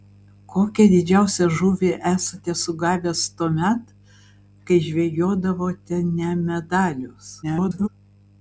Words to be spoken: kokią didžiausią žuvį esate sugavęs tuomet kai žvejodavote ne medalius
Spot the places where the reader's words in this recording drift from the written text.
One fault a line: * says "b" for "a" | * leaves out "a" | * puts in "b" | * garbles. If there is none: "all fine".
* garbles